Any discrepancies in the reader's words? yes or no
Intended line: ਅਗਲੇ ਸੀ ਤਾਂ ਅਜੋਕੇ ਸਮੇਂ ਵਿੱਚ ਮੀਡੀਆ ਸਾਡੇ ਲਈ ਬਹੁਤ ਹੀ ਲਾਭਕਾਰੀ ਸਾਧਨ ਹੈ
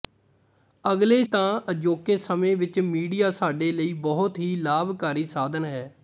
yes